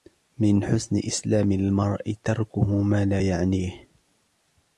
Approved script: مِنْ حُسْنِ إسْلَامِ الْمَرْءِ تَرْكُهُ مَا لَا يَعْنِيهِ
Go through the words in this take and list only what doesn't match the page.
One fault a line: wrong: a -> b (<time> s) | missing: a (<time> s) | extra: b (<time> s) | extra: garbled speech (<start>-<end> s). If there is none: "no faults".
no faults